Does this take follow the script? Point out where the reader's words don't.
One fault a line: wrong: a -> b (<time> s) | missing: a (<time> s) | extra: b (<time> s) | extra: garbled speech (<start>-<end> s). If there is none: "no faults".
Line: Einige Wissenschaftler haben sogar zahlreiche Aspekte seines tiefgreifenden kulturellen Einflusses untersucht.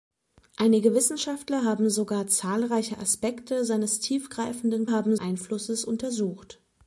wrong: kulturellen -> haben (4.9 s)